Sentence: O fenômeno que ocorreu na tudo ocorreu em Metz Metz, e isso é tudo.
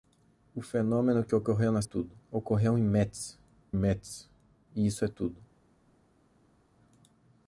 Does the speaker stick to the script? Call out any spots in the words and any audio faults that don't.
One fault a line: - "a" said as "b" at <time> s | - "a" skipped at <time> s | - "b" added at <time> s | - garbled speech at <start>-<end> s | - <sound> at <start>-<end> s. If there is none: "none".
none